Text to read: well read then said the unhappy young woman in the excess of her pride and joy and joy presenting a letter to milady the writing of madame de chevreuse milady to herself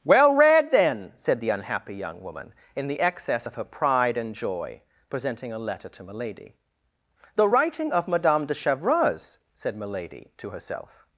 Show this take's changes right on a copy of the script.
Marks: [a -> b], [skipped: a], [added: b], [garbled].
well read then said the unhappy young woman in the excess of her pride and joy [skipped: and joy] presenting a letter to milady the writing of madame de chevreuse [added: said] milady to herself